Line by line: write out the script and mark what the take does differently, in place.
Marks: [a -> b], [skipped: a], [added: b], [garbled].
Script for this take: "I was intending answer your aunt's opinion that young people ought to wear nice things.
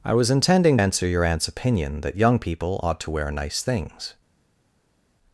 "I was intending answer your aunt's opinion that young people ought to wear nice things.